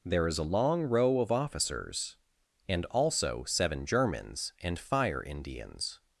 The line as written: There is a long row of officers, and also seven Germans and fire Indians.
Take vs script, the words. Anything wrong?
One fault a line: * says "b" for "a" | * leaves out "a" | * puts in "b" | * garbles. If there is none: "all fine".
all fine